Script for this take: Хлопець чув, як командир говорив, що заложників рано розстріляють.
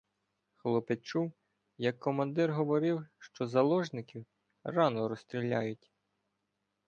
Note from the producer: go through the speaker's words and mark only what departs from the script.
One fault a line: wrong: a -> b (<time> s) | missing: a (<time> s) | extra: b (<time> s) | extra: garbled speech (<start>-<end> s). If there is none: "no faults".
no faults